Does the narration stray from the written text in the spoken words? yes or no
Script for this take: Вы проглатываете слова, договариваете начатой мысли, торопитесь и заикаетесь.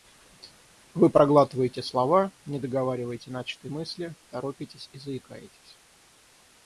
yes